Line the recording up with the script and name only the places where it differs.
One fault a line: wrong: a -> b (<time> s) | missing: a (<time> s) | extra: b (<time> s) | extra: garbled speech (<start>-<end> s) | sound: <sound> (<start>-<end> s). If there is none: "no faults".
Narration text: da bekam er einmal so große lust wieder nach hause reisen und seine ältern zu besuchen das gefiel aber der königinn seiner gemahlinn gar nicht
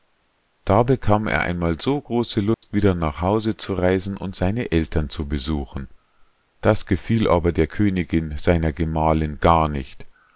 sound: dropout (2.5-2.6 s)
extra: zu (3.5 s)